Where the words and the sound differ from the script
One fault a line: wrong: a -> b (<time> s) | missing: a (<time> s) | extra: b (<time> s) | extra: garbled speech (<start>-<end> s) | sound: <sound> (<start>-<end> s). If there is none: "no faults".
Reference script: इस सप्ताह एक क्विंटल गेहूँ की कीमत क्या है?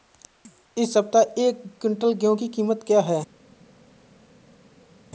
no faults